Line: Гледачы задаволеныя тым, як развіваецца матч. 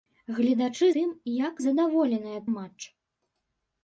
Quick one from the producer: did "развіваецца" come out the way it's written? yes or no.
no